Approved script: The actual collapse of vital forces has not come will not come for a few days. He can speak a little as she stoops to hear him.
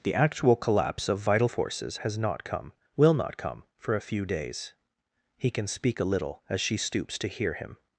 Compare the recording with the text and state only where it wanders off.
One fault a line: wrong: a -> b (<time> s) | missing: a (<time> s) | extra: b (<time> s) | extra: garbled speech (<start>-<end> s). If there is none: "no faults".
no faults